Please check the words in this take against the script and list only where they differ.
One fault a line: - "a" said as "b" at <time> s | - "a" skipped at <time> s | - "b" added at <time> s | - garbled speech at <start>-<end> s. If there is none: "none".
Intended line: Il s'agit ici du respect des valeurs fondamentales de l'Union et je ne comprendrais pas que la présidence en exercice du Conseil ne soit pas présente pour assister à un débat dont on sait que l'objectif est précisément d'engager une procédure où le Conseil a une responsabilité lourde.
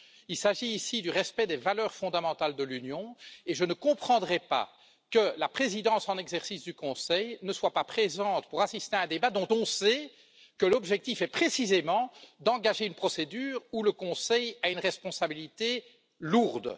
none